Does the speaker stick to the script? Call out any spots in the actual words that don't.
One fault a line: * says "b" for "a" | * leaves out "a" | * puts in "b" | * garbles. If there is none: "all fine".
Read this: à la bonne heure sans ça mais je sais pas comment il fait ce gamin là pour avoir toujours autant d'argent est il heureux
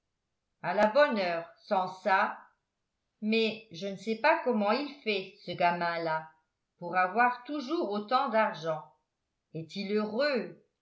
* puts in "ne"